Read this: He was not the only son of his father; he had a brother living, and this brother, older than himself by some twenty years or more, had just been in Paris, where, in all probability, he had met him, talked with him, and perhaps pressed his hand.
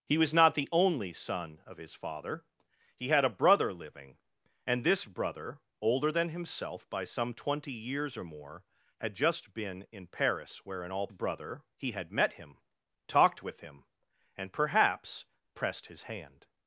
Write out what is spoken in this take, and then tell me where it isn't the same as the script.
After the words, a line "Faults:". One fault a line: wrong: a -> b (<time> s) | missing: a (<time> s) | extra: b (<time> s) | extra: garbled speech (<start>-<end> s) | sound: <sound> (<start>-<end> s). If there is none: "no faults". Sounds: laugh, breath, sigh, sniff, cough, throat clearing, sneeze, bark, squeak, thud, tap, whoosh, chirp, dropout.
He was not the only son of his father; he had a brother living, and this brother, older than himself by some twenty years or more, had just been in Paris, where, in all brother, he had met him, talked with him, and perhaps pressed his hand.
Faults:
wrong: probability -> brother (11.1 s)